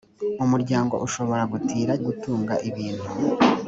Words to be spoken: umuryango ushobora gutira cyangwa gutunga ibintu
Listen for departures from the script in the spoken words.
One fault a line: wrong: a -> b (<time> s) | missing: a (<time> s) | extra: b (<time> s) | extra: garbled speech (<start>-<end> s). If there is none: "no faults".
missing: cyangwa (1.9 s)